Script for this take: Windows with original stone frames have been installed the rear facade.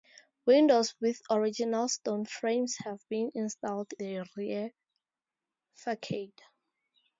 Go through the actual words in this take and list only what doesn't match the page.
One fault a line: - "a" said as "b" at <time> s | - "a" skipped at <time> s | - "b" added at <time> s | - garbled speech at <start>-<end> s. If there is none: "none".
none